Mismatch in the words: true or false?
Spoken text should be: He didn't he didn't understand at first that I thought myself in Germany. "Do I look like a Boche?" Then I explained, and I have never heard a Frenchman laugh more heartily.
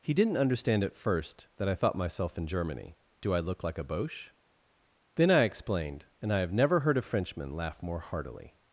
true